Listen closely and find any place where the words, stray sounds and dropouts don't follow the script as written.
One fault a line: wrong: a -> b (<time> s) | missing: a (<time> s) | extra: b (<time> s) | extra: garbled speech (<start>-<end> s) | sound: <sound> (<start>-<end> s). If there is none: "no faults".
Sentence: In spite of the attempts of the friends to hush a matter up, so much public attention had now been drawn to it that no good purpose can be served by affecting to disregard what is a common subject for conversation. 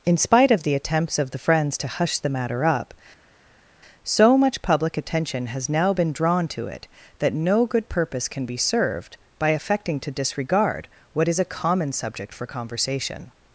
wrong: a -> the (2.2 s)
wrong: had -> has (5.5 s)